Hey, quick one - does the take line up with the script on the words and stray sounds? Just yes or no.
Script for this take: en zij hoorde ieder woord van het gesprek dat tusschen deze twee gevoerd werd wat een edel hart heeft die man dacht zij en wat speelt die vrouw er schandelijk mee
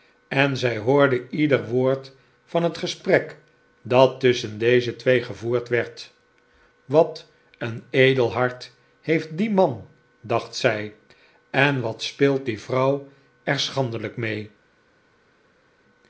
yes